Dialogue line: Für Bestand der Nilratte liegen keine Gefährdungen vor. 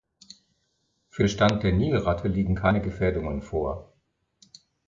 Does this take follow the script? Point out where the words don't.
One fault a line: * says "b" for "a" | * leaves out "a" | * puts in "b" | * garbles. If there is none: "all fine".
all fine